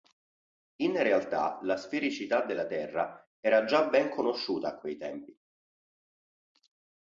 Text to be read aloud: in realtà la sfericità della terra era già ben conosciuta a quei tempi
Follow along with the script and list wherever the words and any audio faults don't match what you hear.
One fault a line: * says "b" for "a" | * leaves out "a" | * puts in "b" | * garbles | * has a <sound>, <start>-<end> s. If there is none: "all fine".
all fine